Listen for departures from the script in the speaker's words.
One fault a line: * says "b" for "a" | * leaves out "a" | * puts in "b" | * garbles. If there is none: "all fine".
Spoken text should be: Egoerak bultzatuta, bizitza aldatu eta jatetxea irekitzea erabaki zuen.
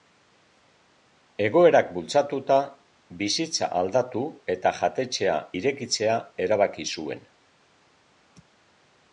all fine